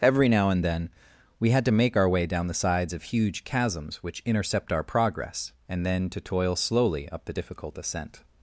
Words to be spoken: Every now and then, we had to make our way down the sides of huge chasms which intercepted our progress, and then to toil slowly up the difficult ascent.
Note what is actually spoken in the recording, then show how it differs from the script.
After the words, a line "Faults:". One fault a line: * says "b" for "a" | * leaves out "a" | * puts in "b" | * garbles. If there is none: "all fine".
Every now and then, we had to make our way down the sides of huge chasms which intercept our progress, and then to toil slowly up the difficult ascent.
Faults:
* says "intercept" for "intercepted"